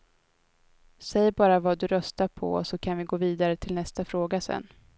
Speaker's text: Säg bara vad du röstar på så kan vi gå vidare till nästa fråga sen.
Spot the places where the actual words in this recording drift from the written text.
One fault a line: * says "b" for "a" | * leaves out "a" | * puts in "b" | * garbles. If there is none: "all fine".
all fine